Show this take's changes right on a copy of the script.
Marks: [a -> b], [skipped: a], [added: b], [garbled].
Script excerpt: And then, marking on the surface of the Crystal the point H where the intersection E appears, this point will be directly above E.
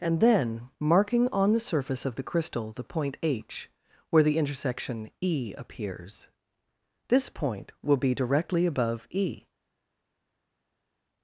And then, marking on the surface of the Crystal the point H where the intersection E appears, this point will be directly above E.